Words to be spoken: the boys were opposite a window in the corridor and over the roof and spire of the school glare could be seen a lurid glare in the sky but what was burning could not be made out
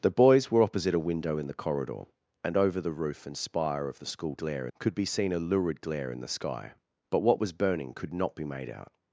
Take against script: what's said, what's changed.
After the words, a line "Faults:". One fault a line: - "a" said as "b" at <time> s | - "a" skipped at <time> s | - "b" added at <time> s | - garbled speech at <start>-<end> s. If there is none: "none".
the boys were opposite a window in the corridor and over the roof and spire of the school glare could be seen a lurid glare in the sky but what was burning could not be made out
Faults:
none